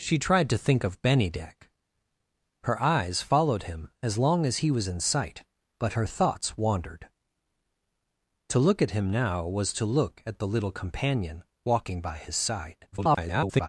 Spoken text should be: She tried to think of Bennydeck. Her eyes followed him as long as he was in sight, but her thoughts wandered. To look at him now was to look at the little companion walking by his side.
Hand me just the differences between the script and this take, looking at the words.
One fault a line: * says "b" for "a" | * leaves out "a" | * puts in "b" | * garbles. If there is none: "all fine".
* garbles